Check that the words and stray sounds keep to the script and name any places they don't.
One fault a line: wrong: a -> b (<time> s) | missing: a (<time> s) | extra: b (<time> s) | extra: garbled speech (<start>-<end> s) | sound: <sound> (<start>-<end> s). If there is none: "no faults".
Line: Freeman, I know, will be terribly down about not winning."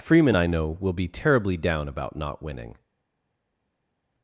no faults